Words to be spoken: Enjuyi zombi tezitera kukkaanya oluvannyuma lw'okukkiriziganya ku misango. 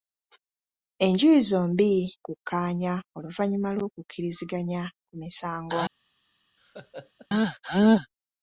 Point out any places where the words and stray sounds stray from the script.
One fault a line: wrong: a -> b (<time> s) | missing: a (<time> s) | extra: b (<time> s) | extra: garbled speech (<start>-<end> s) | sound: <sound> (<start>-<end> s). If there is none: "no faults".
missing: tezitera (1.9 s)
sound: laugh (6.6-7.3 s)